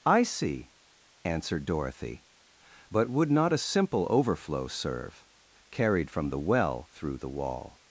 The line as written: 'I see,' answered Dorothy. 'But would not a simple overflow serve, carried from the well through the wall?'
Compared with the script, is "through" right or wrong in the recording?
right